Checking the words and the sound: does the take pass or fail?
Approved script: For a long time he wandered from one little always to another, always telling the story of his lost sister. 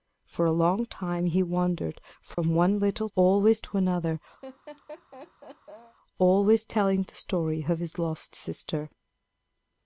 fail